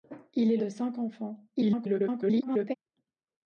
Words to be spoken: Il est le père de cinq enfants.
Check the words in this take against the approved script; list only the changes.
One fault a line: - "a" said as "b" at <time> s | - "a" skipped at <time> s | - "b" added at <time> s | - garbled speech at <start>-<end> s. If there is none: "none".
- "le père" skipped at 0.6 s
- garbled speech at 1.6-2.7 s